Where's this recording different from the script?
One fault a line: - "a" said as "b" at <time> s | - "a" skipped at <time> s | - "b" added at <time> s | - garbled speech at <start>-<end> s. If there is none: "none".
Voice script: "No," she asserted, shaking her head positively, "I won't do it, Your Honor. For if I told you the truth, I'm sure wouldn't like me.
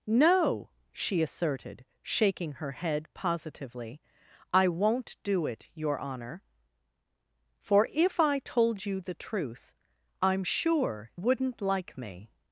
none